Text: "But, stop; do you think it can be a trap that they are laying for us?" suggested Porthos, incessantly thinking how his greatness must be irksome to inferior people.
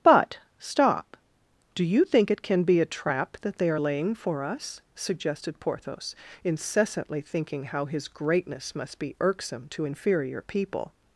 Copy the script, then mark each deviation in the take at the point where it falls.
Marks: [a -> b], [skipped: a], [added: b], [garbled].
"But, stop; do you think it can be a trap that they are laying for us?" suggested Porthos, incessantly thinking how his greatness must be irksome to inferior people.